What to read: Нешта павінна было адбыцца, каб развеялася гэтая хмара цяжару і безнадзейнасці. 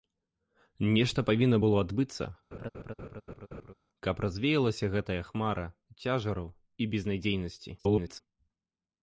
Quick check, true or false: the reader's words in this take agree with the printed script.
false